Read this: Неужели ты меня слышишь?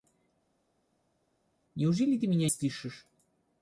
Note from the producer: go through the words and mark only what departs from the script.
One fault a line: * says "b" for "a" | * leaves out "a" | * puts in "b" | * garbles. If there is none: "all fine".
all fine